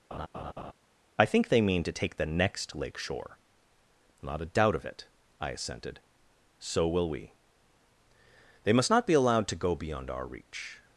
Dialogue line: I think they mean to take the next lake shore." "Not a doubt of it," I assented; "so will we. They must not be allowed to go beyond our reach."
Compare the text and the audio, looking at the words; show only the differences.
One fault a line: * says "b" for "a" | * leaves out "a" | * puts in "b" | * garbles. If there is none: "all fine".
all fine